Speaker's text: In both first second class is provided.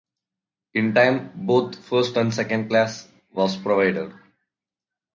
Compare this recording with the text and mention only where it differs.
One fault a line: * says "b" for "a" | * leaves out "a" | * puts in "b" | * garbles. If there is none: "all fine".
* puts in "time"
* puts in "and"
* says "was" for "is"